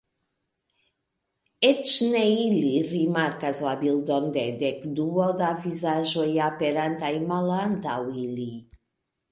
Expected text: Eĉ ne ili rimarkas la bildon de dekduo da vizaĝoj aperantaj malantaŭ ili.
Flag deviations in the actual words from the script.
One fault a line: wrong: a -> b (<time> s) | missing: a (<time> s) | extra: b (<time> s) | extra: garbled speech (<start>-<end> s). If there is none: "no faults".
no faults